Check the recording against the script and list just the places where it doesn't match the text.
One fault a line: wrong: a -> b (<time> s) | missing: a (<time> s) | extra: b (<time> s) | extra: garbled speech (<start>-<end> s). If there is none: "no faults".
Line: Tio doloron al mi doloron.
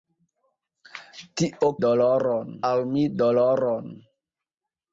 no faults